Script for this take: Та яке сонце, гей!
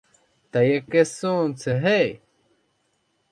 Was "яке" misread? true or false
false